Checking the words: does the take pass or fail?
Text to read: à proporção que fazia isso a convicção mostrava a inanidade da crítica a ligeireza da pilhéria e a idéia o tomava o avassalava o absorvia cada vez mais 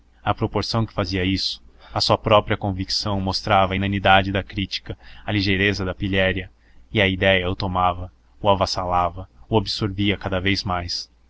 fail